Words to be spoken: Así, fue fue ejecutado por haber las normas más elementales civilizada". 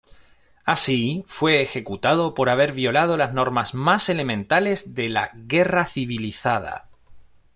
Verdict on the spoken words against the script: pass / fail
fail